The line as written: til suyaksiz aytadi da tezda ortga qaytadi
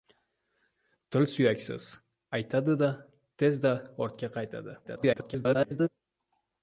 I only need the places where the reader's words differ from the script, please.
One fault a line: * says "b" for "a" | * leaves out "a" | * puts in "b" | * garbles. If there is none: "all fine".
* garbles